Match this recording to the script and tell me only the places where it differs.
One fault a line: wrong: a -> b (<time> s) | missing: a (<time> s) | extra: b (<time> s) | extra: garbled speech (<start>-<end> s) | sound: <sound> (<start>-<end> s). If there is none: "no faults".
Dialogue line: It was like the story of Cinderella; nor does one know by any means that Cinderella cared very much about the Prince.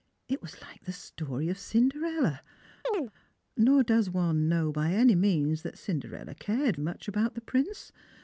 sound: chirp (2.8-3.1 s)
missing: very (6.7 s)